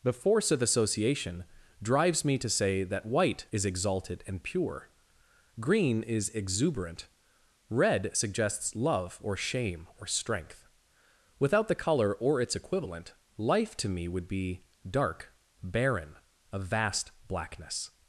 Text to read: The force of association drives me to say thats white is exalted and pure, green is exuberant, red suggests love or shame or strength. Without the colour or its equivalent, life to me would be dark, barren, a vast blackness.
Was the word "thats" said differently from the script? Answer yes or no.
yes